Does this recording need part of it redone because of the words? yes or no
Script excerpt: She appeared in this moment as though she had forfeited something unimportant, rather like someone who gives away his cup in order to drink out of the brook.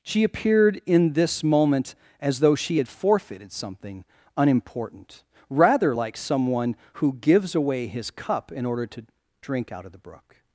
no